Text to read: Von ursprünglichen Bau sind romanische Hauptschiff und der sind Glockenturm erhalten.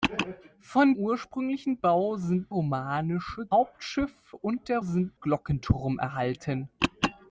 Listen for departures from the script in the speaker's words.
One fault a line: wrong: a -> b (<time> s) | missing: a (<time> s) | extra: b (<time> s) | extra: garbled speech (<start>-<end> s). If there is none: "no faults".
no faults